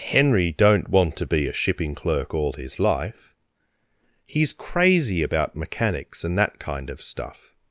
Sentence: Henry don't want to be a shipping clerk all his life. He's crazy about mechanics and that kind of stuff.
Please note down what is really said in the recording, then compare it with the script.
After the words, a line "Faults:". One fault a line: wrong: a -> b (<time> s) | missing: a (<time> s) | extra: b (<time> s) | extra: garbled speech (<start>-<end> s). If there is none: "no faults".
Henry don't want to be a shipping clerk all his life. He's crazy about mechanics and that kind of stuff.
Faults:
no faults